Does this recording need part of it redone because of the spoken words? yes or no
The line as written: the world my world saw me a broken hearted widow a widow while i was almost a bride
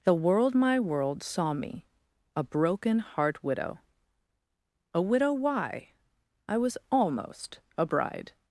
yes